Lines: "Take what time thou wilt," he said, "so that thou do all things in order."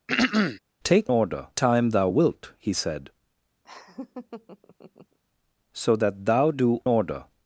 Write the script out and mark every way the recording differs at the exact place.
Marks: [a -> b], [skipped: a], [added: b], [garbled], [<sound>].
[throat clearing] "Take [what -> order] time thou wilt," he said, [laugh] "so that thou do [skipped: all things in] order."